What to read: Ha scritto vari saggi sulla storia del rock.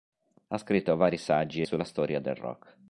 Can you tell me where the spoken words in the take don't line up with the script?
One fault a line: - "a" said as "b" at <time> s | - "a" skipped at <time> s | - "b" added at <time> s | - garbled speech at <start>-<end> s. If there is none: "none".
none